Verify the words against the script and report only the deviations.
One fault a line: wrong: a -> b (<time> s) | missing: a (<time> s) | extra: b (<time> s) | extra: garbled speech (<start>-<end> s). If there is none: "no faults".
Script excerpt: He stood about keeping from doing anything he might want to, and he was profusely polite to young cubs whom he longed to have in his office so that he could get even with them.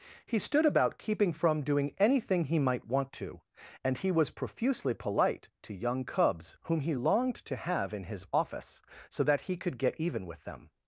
no faults